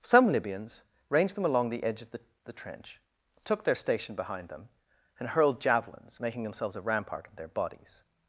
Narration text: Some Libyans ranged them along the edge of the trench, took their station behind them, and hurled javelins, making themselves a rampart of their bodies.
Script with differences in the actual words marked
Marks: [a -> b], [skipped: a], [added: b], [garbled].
Some Libyans ranged them along the edge of the [added: the] trench, took their station behind them, and hurled javelins, making themselves a rampart of their bodies.